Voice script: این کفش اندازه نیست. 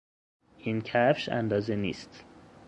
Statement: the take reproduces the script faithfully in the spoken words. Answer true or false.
true